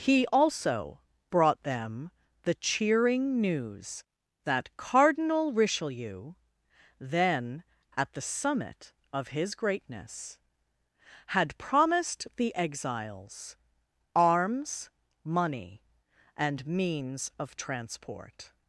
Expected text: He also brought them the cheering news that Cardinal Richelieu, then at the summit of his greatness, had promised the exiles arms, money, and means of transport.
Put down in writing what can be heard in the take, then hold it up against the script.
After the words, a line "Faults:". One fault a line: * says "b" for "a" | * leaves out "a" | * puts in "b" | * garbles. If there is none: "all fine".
He also brought them the cheering news that Cardinal Richelieu, then at the summit of his greatness, had promised the exiles arms, money, and means of transport.
Faults:
all fine